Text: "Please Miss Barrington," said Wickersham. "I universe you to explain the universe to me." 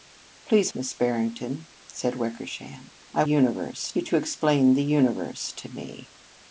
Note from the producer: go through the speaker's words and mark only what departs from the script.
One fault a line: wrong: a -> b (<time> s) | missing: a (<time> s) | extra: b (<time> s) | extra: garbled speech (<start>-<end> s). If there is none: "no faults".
no faults